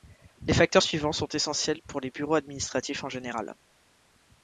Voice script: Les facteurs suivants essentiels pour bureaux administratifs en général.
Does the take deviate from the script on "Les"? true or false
false